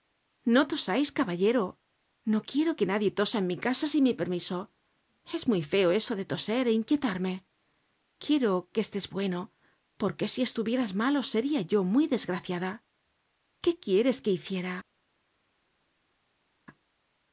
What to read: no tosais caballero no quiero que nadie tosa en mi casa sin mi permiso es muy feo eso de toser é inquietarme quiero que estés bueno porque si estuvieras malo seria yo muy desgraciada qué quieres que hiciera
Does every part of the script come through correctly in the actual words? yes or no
yes